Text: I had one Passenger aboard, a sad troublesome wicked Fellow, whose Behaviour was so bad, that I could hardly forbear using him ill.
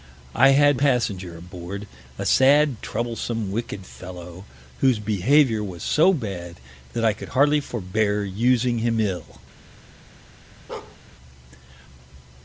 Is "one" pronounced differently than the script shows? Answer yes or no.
yes